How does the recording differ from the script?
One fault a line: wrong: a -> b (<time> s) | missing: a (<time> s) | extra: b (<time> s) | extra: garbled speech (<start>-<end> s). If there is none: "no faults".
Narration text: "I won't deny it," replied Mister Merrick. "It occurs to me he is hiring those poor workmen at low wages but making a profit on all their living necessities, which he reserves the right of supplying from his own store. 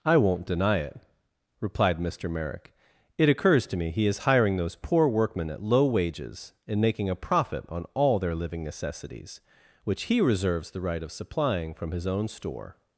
wrong: but -> and (6.7 s)